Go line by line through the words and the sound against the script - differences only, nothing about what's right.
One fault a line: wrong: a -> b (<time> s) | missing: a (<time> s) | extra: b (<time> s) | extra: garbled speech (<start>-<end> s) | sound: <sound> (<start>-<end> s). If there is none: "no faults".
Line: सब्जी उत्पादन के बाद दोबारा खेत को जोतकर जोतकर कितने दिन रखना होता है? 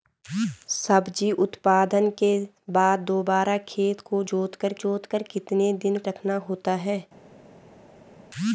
no faults